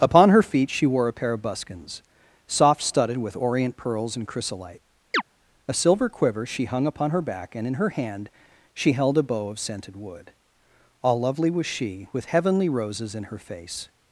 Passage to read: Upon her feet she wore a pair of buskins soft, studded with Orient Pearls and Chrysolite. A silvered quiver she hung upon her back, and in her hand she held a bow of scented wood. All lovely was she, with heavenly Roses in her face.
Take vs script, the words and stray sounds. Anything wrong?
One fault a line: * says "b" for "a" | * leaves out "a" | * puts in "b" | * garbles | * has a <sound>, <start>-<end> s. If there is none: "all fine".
* has a chirp, 5.1-5.2 s
* says "silver" for "silvered"